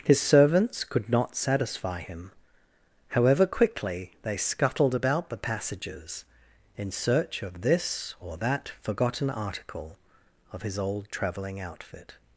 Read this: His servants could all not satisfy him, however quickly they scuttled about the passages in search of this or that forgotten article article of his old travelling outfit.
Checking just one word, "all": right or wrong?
wrong